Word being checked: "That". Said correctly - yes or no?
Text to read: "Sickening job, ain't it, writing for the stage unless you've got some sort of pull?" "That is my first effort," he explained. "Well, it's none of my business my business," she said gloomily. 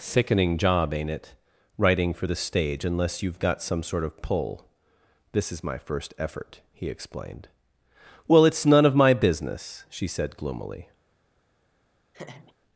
no